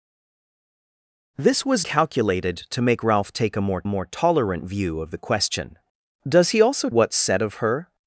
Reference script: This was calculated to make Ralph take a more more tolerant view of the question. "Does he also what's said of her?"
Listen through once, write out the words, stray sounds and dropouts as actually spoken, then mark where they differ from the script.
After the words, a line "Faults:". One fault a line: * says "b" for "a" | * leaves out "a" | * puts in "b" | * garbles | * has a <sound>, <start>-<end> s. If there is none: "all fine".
This was calculated to make Ralph take a more more tolerant view of the question. "Does he also what's said of her?"
Faults:
all fine